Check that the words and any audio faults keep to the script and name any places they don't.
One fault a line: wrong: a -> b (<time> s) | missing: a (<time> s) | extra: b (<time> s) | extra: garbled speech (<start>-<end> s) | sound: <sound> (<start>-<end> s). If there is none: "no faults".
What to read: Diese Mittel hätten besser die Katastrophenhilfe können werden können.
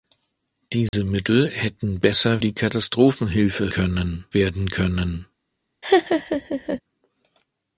sound: dropout (0.9-0.9 s)
sound: laugh (5.8-6.8 s)